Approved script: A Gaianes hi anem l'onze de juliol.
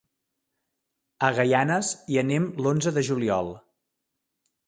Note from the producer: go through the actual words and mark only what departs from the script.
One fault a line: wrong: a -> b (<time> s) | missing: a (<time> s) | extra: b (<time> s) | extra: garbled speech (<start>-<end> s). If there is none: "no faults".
no faults